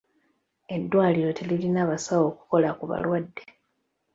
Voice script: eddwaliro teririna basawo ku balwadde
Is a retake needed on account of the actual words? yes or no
yes